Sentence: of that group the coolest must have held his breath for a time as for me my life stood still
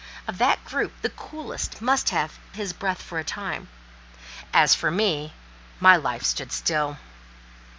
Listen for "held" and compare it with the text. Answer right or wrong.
wrong